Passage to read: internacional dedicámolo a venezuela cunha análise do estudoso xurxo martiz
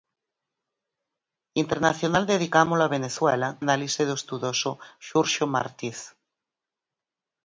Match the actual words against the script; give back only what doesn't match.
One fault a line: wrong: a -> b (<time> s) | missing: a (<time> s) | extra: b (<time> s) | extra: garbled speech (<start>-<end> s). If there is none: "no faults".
missing: cunha (3.5 s)